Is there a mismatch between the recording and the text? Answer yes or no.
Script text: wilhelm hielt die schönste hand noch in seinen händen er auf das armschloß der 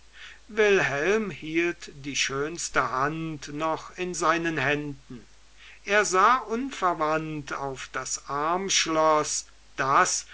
yes